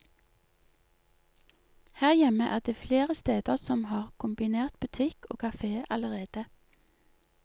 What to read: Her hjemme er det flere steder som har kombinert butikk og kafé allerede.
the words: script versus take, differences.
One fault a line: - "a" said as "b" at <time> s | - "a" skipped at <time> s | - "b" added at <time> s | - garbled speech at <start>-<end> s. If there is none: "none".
none